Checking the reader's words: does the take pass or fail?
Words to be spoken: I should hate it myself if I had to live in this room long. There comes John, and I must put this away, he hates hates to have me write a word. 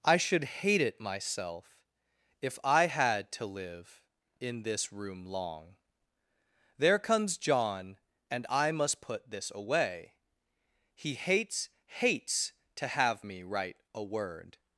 pass